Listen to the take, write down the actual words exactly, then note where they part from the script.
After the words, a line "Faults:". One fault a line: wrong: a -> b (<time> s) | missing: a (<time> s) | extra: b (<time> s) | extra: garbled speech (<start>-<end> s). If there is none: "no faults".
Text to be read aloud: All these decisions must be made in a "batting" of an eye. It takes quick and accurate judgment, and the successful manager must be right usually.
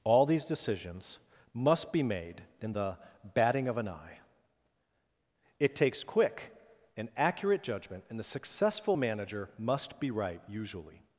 All these decisions must be made in the "batting" of an eye. It takes quick and accurate judgment, and the successful manager must be right usually.
Faults:
wrong: a -> the (2.7 s)